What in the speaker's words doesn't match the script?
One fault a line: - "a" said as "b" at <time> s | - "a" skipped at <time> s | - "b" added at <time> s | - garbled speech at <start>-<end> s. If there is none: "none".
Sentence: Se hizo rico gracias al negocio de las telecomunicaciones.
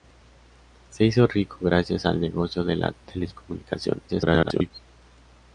- garbled speech at 4.1-4.7 s